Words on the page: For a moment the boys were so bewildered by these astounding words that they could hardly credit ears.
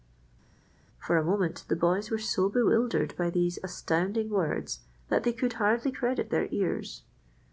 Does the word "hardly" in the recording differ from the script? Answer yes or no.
no